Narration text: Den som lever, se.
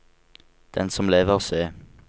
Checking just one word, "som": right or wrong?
right